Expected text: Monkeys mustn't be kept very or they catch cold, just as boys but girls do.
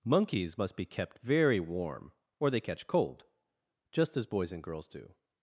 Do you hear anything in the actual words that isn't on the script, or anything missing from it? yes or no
yes